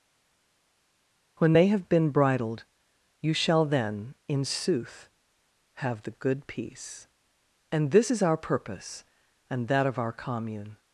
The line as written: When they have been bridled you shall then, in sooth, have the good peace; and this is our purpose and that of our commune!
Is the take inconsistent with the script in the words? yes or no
no